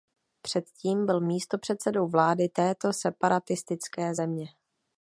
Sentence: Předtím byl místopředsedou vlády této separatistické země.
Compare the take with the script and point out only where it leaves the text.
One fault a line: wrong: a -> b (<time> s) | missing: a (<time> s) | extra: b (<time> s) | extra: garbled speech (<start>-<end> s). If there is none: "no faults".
no faults